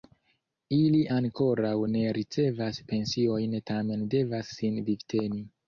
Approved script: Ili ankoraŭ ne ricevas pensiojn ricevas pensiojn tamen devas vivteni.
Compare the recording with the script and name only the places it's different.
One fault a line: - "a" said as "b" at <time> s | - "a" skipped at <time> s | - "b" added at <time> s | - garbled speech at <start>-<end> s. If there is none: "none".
- "ricevas pensiojn" skipped at 3.6 s
- "sin" added at 4.6 s